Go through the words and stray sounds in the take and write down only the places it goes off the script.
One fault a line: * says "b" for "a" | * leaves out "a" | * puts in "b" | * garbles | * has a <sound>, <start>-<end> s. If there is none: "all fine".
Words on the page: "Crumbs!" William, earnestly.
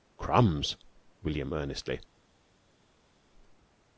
all fine